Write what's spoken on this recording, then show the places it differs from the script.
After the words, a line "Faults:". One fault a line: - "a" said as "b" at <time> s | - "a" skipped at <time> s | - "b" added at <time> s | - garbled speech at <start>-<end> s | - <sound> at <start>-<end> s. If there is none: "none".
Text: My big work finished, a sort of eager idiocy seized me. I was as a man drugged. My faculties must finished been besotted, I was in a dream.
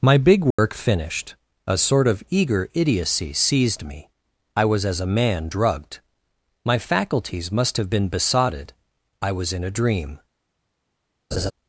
My big work finished, a sort of eager idiocy seized me. I was as a man drugged. My faculties must have been besotted, I was in a dream.
Faults:
- dropout at 0.5-0.6 s
- "finished" said as "have" at 7.8 s
- laugh at 11.3-11.5 s